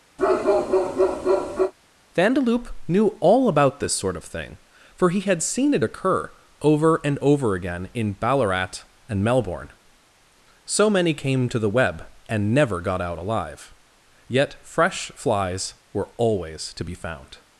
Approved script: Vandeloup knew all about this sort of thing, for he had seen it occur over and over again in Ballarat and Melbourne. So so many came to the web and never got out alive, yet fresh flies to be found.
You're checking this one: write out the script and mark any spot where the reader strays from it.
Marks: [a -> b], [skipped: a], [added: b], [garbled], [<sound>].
[bark] Vandeloup knew all about this sort of thing, for he had seen it occur over and over again in Ballarat and Melbourne. So [skipped: so] many came to the web and never got out alive, yet fresh flies [added: were always] to be found.